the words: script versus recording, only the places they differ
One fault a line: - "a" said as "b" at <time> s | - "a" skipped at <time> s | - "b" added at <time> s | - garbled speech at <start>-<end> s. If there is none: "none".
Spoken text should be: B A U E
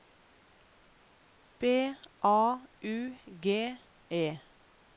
- "G" added at 3.4 s